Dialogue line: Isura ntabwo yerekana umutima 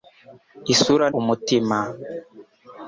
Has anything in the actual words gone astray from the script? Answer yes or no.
yes